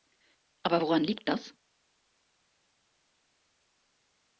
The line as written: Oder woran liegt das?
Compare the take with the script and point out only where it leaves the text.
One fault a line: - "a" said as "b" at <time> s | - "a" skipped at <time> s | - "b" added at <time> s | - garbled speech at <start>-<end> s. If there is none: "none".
- "Oder" said as "Aber" at 0.6 s